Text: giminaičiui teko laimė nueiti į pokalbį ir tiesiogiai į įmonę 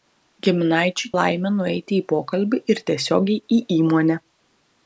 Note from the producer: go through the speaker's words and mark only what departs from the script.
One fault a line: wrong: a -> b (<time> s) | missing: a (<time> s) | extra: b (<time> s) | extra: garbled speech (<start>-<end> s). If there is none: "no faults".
missing: teko (1.1 s)